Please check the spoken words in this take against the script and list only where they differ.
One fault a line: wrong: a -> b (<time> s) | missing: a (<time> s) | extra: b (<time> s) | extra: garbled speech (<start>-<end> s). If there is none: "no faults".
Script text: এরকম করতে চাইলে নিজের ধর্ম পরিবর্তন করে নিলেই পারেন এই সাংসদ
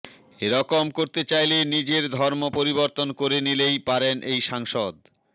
no faults